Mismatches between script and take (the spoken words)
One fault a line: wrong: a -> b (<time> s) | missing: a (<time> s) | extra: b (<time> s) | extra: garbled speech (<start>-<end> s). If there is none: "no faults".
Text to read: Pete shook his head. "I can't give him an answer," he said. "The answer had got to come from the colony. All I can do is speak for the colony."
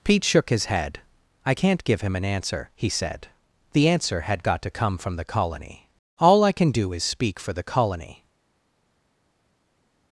no faults